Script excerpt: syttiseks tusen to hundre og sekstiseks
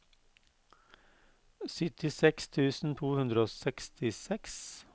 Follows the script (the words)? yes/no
yes